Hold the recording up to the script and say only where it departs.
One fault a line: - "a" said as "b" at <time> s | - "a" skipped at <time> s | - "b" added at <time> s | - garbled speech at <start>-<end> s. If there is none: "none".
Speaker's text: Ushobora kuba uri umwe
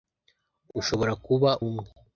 - "uri" skipped at 1.5 s